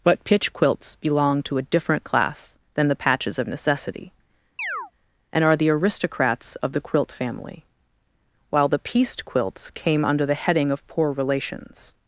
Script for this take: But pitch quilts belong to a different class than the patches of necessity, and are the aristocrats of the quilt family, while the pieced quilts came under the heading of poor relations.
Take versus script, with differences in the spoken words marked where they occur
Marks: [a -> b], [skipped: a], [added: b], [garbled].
But pitch quilts belong to a different class than the patches of necessity, and are the aristocrats of the quilt family, while the pieced quilts came under the heading of poor relations.